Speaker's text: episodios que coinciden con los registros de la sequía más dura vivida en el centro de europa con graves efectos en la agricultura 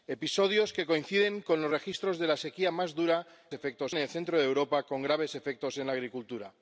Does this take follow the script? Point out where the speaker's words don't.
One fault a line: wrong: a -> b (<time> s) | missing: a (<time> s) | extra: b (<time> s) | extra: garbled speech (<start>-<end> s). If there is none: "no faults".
wrong: vivida -> efectos (3.5 s)